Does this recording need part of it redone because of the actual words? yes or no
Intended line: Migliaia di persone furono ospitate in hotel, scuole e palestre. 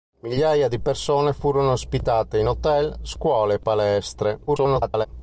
yes